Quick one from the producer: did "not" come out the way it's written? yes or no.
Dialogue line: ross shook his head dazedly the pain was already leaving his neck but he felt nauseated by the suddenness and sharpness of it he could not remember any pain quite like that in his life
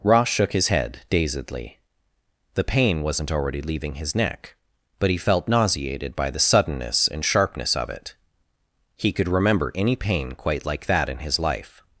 no